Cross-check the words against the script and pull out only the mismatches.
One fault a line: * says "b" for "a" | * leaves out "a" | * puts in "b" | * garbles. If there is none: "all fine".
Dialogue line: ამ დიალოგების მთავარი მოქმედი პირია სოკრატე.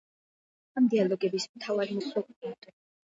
* leaves out "მოქმედი პირია"